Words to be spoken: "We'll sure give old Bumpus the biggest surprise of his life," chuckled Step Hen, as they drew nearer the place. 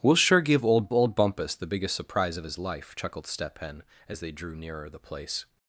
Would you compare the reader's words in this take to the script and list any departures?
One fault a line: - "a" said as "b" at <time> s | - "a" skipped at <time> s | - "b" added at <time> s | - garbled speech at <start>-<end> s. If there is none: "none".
- "old" added at 0.9 s